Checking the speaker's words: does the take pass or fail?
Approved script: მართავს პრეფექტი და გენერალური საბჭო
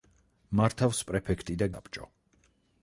fail